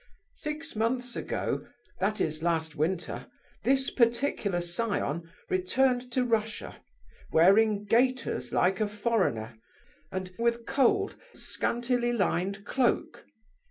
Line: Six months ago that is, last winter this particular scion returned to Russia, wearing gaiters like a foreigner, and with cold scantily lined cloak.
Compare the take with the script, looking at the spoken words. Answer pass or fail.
pass